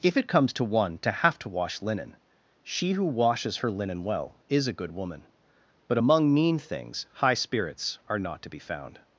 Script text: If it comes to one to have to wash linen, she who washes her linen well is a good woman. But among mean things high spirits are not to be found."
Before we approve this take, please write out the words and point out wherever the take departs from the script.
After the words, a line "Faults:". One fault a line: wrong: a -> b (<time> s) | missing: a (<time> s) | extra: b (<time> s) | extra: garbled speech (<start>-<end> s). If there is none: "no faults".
If it comes to one to have to wash linen, she who washes her linen well is a good woman. But among mean things high spirits are not to be found."
Faults:
no faults